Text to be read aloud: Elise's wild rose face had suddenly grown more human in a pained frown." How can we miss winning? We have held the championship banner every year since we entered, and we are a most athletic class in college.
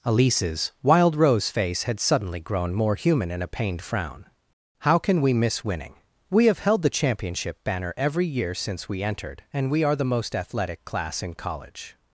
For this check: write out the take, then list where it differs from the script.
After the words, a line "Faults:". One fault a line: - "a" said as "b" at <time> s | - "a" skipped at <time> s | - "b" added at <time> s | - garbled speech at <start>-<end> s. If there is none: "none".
Elise's wild rose face had suddenly grown more human in a pained frown." How can we miss winning? We have held the championship banner every year since we entered, and we are the most athletic class in college.
Faults:
- "a" said as "the" at 9.9 s